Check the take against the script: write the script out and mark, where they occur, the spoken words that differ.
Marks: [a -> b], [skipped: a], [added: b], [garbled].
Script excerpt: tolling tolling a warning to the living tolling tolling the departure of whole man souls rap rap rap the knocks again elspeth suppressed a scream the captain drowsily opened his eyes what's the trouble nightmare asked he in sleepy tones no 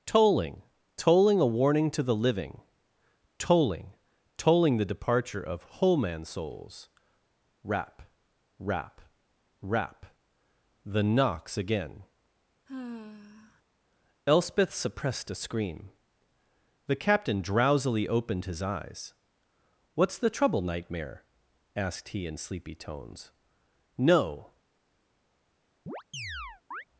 tolling tolling a warning to the living tolling tolling the departure of whole man souls rap rap rap the knocks again elspeth suppressed a scream the captain drowsily opened his eyes what's the trouble nightmare asked he in sleepy tones no